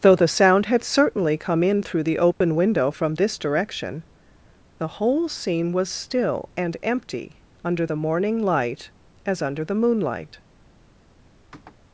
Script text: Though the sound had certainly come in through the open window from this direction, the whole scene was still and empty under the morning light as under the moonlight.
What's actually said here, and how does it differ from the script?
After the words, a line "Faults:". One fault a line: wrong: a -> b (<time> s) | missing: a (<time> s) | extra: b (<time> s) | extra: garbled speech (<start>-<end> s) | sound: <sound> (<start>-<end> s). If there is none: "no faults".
Though the sound had certainly come in through the open window from this direction, the whole scene was still and empty under the morning light as under the moonlight.
Faults:
sound: dropout (2.3-2.4 s)
sound: sniff (11.5-11.8 s)